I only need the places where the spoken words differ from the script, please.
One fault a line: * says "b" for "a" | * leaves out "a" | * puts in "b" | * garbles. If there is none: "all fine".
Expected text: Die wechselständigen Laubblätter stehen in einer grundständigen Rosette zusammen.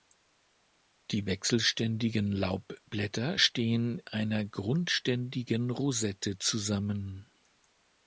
* leaves out "in"